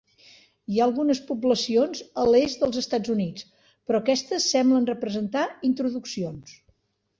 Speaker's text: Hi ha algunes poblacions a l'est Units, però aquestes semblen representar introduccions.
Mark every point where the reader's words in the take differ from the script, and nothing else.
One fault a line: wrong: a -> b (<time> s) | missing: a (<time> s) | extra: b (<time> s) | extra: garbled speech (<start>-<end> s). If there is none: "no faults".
extra: dels Estats (2.6 s)